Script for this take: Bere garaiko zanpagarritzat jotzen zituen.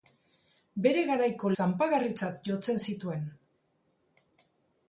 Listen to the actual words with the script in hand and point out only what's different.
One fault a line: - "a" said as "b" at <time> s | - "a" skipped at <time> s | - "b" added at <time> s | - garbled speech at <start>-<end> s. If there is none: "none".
none